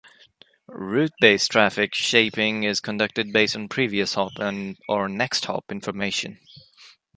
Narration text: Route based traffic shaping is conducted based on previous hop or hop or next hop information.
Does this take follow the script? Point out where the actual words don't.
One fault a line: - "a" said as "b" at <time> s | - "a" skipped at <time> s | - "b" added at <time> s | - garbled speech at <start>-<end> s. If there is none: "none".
- "hop or" skipped at 5.1 s